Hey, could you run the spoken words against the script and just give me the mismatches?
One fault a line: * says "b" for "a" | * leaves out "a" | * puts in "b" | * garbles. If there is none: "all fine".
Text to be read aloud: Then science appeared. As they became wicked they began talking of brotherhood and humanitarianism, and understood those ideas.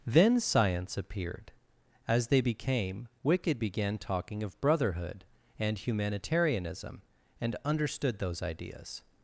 * leaves out "they"